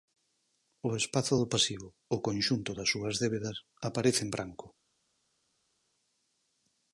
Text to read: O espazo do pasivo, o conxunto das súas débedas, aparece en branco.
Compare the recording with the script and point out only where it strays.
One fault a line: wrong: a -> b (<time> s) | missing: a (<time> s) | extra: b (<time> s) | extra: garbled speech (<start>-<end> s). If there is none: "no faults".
no faults